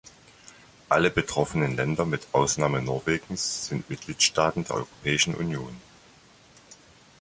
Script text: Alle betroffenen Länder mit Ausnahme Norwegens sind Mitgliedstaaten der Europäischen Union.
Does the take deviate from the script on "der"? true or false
false